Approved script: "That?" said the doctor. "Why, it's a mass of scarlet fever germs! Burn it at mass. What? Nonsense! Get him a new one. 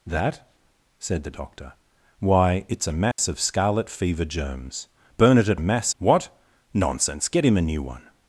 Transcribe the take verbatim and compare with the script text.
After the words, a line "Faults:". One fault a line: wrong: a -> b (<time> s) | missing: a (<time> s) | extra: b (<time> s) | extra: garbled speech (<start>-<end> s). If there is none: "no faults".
"That?" said the doctor. "Why, it's a mass of scarlet fever germs! Burn it at mass. What? Nonsense! Get him a new one.
Faults:
no faults